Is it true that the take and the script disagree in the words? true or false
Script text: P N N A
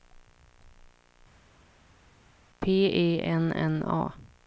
true